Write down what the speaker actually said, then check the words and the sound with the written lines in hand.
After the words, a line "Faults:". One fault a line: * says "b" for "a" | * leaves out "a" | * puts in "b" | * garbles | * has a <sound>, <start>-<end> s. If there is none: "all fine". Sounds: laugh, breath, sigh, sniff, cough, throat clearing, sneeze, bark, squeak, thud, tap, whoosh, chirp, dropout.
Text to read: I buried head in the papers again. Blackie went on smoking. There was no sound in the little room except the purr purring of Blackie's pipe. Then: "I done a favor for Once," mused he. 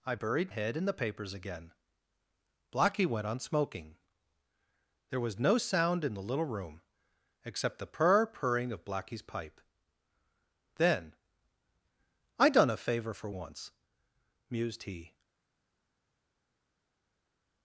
I buried head in the papers again. Blackie went on smoking. There was no sound in the little room except the purr purring of Blackie's pipe. Then: "I done a favor for Once," mused he.
Faults:
all fine